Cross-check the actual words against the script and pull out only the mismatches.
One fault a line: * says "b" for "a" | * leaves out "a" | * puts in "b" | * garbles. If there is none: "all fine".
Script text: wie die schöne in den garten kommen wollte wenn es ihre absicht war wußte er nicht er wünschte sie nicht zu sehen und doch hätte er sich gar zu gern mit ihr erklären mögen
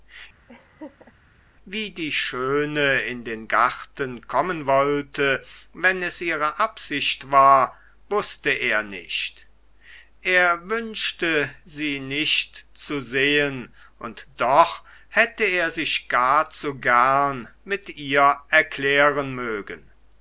all fine